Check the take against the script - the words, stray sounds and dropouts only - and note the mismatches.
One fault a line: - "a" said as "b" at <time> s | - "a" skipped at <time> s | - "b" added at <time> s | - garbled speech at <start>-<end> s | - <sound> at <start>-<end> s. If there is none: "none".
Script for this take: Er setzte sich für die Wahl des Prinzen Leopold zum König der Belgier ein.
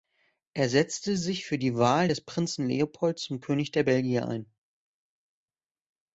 none